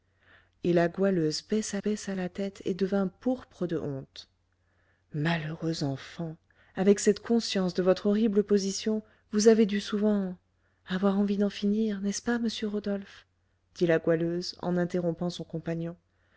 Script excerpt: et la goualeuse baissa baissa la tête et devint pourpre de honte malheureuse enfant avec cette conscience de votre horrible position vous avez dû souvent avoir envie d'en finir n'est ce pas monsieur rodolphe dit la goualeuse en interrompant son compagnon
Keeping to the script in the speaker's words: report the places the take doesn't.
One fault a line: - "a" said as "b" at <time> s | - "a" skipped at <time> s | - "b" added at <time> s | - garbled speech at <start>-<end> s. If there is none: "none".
none